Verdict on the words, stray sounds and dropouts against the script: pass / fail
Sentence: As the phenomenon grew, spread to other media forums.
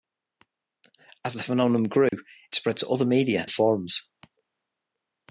fail